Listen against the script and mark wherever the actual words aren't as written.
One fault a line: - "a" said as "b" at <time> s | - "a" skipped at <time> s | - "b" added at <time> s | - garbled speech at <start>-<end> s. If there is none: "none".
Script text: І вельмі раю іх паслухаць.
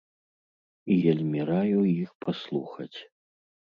none